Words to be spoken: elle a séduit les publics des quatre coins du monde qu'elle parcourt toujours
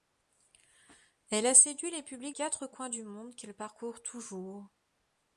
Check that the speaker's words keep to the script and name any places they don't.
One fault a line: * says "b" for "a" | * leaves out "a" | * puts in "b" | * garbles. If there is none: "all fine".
* leaves out "des"